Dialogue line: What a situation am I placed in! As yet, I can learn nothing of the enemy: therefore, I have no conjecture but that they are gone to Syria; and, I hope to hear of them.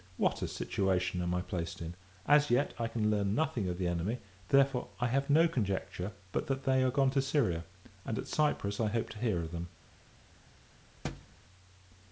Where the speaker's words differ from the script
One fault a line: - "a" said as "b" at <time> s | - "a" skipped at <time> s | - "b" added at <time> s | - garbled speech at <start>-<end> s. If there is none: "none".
- "at Cyprus" added at 8.2 s